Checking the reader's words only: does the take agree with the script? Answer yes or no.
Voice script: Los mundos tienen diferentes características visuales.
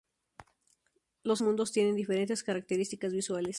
yes